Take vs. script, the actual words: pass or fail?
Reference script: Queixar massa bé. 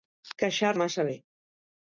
pass